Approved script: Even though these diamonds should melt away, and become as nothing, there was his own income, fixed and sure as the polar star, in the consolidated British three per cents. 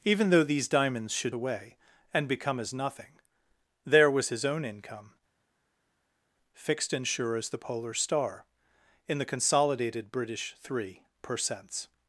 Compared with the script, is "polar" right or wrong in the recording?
right